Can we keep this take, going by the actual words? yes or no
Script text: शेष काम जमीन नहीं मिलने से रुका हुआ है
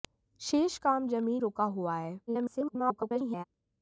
no